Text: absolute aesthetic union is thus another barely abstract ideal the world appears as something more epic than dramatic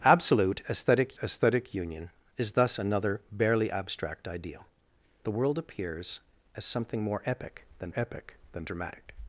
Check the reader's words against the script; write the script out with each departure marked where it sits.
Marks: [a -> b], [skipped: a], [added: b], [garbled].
absolute aesthetic [added: aesthetic] union is thus another barely abstract ideal the world appears as something more epic than [added: epic than] dramatic